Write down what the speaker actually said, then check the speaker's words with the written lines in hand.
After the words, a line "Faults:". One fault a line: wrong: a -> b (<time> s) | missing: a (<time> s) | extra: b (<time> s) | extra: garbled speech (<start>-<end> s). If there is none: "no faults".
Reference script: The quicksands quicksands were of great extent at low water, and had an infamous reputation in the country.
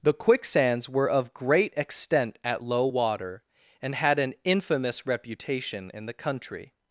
The quicksands were of great extent at low water, and had an infamous reputation in the country.
Faults:
missing: quicksands (0.9 s)